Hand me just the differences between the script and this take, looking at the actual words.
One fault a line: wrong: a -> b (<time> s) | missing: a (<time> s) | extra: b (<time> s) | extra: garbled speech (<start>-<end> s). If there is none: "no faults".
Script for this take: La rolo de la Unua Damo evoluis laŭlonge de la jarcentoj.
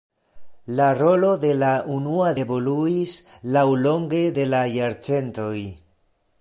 missing: Damo (2.3 s)